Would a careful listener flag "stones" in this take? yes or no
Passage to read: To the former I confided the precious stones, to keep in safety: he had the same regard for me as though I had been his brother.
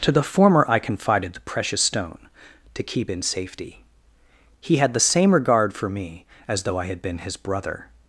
yes